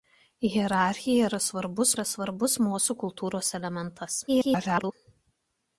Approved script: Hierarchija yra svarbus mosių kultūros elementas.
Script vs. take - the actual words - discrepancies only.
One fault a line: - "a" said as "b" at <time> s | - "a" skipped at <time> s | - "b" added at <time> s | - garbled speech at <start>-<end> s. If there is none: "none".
- "yra svarbus" added at 1.9 s
- garbled speech at 4.3-4.9 s